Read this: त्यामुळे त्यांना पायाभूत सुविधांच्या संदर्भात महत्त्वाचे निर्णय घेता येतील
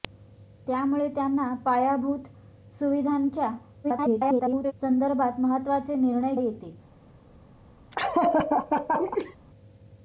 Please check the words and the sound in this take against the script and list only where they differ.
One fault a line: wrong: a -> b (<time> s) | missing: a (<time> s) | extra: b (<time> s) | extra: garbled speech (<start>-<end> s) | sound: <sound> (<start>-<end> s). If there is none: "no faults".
extra: garbled speech (3.8-4.7 s)
missing: घेता (6.3 s)
sound: laugh (7.9-9.4 s)